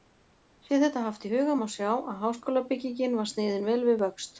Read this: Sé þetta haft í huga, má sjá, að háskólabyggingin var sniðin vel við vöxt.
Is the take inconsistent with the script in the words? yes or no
no